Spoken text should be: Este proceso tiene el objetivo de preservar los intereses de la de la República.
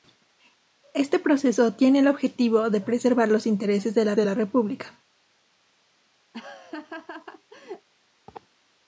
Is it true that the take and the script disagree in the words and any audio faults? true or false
true